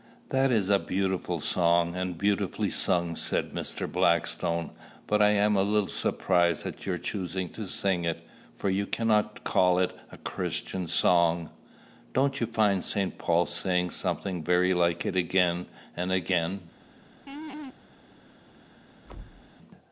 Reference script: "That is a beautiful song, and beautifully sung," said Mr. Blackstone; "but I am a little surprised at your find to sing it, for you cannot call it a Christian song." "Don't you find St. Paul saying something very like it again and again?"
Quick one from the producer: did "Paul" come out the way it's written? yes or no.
yes